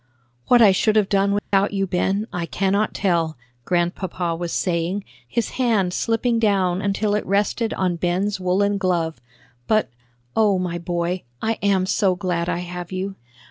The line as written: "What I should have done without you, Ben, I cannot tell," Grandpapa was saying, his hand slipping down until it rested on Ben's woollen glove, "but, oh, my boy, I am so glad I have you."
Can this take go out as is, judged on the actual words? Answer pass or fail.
pass